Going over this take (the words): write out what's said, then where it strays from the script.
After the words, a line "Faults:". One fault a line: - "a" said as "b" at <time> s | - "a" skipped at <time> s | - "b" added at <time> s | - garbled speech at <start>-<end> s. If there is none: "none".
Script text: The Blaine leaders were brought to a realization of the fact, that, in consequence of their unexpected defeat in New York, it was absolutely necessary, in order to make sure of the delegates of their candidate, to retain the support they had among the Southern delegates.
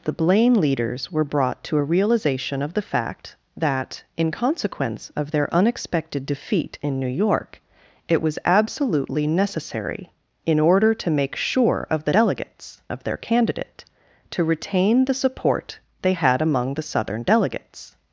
The Blaine leaders were brought to a realization of the fact, that, in consequence of their unexpected defeat in New York, it was absolutely necessary, in order to make sure of the delegates of their candidate, to retain the support they had among the Southern delegates.
Faults:
none